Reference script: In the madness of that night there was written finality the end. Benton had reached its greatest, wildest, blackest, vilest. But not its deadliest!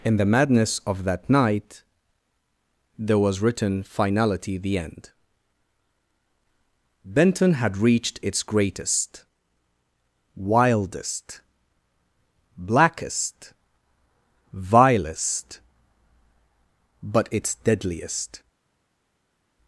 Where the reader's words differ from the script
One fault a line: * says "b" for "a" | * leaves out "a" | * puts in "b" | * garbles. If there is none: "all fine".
* leaves out "not"